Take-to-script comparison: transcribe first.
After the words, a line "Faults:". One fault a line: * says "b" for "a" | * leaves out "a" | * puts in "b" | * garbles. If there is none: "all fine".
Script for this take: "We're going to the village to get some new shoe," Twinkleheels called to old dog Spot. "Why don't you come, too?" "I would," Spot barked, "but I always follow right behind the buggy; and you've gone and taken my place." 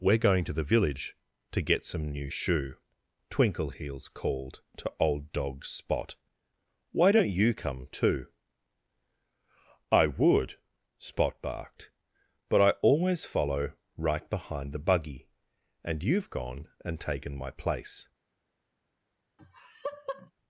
"We're going to the village to get some new shoe," Twinkleheels called to old dog Spot. "Why don't you come, too?" "I would," Spot barked, "but I always follow right behind the buggy; and you've gone and taken my place."
Faults:
all fine